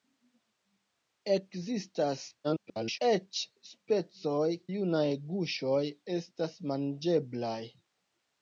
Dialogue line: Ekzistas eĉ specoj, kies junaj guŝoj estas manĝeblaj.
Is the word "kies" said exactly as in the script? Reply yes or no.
no